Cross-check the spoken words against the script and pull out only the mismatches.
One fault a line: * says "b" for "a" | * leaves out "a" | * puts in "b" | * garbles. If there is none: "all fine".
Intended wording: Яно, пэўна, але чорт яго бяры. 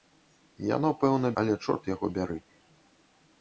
all fine